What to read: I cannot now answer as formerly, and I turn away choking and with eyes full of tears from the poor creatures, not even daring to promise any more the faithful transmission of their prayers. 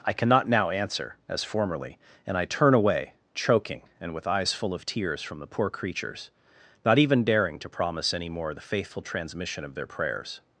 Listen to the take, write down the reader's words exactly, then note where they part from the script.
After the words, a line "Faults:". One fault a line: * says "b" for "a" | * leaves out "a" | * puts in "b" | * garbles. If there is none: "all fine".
I cannot now answer as formerly, and I turn away choking and with eyes full of tears from the poor creatures, not even daring to promise any more the faithful transmission of their prayers.
Faults:
all fine